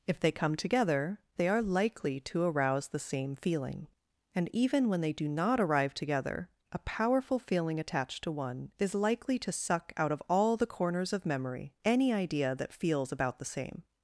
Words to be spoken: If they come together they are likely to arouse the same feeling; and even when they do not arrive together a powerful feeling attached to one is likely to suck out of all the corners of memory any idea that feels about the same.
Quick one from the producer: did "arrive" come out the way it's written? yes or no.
yes